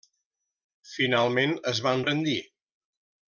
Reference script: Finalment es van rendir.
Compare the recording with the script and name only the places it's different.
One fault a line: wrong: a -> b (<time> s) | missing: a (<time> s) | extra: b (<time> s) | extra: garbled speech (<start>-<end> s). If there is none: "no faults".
no faults